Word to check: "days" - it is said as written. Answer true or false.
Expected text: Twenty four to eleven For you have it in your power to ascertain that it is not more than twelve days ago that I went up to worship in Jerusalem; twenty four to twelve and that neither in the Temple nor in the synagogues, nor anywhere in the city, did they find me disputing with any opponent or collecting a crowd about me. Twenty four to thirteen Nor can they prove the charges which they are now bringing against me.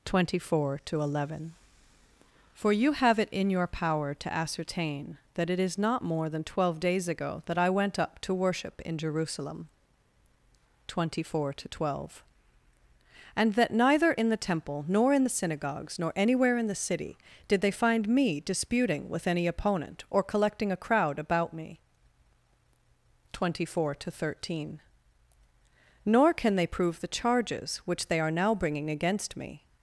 true